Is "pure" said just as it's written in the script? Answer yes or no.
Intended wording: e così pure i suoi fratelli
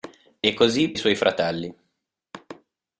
no